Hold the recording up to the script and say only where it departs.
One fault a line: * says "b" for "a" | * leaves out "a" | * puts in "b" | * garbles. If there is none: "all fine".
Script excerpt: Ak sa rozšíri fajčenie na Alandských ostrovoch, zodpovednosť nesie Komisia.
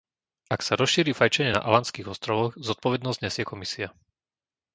all fine